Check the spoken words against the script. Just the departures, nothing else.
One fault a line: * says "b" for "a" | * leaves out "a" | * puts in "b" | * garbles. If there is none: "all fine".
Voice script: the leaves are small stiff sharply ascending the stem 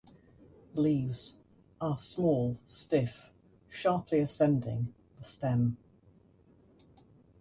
all fine